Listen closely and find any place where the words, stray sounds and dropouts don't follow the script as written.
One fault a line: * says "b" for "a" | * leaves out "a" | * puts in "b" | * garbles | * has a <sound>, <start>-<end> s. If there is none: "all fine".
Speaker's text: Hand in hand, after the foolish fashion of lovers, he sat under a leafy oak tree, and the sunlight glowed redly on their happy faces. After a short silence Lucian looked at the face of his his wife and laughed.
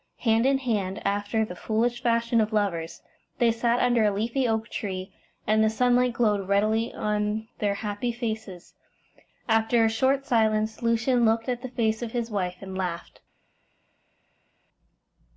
* says "they" for "he"
* leaves out "his"